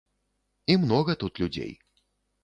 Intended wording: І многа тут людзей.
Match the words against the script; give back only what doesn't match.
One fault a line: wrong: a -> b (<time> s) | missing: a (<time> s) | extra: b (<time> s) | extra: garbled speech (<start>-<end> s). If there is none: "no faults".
no faults